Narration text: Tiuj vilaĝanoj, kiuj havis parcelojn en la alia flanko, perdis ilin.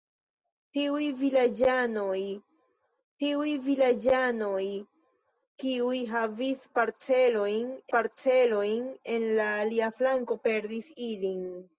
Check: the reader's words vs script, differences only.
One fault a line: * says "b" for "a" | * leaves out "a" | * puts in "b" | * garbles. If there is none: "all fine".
* puts in "tiuj vilaĝanoj"
* puts in "parcelojn"